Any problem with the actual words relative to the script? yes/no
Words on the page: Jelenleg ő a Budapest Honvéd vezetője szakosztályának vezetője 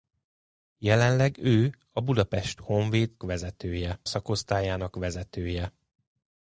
no